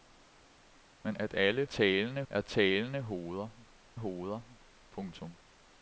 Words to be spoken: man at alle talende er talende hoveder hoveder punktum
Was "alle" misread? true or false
false